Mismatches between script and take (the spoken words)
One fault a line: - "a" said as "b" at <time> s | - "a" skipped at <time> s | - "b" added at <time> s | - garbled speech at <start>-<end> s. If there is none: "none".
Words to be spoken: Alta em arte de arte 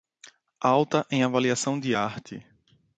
- "arte" said as "avaliação" at 1.2 s